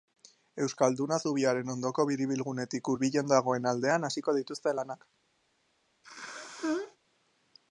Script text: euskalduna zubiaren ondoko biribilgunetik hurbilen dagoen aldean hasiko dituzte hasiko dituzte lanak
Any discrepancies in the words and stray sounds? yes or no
yes